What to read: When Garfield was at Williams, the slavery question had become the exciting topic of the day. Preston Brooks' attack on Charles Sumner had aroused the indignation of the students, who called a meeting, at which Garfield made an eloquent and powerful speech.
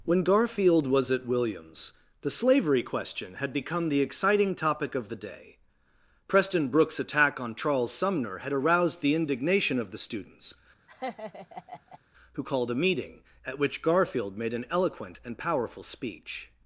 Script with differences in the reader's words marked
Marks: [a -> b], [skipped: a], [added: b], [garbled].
When Garfield was at Williams, the slavery question had become the exciting topic of the day. Preston Brooks' attack on Charles Sumner had aroused the indignation of the students, who called a meeting, at which Garfield made an eloquent and powerful speech.